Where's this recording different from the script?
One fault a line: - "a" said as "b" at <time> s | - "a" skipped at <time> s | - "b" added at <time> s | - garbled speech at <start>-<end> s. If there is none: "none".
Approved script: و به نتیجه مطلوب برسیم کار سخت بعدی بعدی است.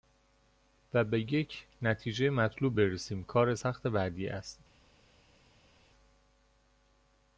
- "یک" added at 1.3 s
- "بعدی" skipped at 4.3 s